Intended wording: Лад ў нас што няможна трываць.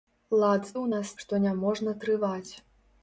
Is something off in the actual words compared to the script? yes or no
no